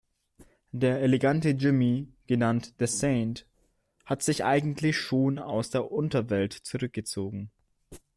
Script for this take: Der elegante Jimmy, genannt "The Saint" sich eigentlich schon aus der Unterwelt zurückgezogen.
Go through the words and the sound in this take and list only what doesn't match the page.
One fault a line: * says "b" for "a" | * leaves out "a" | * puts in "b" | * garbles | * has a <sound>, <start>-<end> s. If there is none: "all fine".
* puts in "hat"